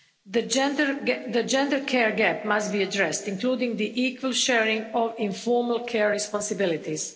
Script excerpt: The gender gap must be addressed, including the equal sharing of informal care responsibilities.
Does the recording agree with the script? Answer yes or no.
no